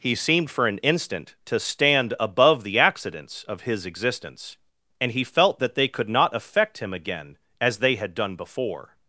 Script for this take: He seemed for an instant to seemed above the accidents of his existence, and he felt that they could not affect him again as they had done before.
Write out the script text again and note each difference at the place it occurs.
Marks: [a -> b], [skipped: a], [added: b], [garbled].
He seemed for an instant to [seemed -> stand] above the accidents of his existence, and he felt that they could not affect him again as they had done before.